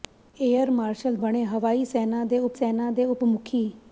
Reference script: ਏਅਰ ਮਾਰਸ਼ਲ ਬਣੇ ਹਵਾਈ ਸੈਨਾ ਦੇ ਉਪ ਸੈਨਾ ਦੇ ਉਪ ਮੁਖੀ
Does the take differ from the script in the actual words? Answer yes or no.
no